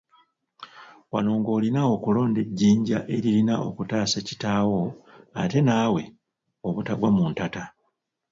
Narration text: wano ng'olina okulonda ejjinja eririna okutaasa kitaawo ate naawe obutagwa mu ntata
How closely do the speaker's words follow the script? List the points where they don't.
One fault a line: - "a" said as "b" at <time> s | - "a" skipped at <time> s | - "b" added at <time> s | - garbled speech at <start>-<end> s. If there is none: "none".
none